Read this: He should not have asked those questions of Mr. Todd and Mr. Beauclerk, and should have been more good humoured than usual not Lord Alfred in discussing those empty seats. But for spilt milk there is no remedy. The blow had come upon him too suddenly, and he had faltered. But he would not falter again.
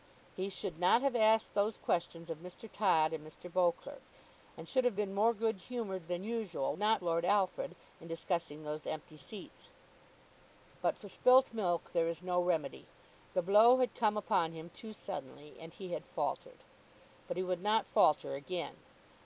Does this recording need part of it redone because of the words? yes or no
no